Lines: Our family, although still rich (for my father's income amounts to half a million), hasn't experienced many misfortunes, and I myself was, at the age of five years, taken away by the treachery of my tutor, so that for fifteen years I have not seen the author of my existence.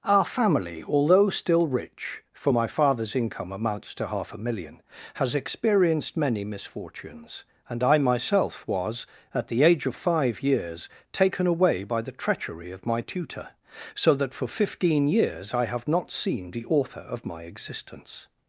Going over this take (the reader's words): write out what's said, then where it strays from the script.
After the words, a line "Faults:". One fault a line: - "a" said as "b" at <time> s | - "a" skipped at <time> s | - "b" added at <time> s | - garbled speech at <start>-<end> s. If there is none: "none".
Our family, although still rich (for my father's income amounts to half a million), has experienced many misfortunes, and I myself was, at the age of five years, taken away by the treachery of my tutor, so that for fifteen years I have not seen the author of my existence.
Faults:
- "hasn't" said as "has" at 5.1 s